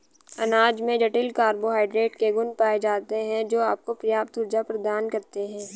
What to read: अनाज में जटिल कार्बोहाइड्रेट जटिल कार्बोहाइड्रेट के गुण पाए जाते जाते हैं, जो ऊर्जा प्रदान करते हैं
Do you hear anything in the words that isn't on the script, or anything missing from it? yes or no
yes